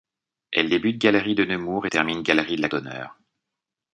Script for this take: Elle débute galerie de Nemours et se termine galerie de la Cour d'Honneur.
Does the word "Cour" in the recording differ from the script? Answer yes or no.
yes